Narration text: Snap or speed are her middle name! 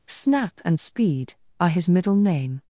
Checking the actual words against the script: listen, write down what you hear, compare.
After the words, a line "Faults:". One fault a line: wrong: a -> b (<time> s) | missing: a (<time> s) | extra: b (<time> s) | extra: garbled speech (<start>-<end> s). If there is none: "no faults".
Snap and speed are his middle name!
Faults:
wrong: or -> and (0.7 s)
wrong: her -> his (1.7 s)